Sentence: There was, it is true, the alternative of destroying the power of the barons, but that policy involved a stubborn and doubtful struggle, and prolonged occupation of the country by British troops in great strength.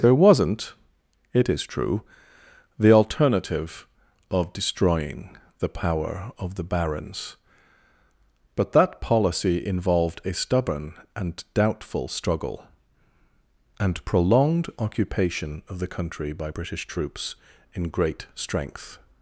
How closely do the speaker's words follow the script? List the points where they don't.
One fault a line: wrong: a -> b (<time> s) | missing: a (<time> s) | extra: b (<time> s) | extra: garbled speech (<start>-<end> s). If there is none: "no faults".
wrong: was -> wasn't (0.1 s)